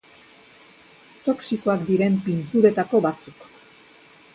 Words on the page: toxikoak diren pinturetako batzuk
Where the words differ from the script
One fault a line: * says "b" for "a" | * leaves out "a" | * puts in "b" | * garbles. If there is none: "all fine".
all fine